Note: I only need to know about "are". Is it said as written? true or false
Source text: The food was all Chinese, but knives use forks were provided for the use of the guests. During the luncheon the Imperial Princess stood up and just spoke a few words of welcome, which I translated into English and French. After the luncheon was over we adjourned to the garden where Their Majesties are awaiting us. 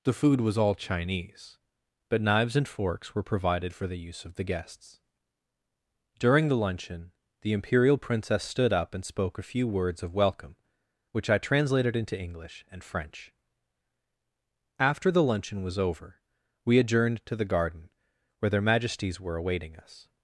false